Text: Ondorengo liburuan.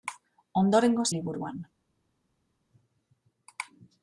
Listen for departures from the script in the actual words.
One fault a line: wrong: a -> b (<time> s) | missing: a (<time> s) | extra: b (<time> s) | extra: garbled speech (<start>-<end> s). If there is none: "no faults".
no faults